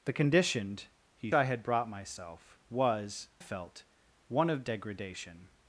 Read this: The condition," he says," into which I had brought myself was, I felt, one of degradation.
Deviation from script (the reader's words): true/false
true